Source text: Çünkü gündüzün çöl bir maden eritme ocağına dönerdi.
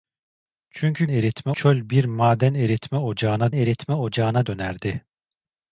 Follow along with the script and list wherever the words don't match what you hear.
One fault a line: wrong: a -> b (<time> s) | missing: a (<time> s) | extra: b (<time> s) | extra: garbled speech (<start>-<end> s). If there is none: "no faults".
wrong: gündüzün -> eritme (1.1 s)
extra: eritme ocağına (3.5 s)